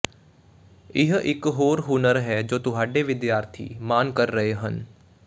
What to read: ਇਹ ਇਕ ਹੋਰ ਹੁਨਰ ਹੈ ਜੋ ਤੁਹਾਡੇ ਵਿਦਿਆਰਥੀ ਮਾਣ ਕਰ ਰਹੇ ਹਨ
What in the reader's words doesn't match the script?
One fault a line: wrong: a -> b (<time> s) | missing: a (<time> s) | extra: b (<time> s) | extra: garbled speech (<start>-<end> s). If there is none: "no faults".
no faults